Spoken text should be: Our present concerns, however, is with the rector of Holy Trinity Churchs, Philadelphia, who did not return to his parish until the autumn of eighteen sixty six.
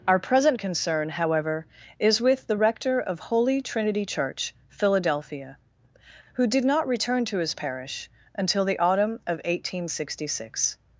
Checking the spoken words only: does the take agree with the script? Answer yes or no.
no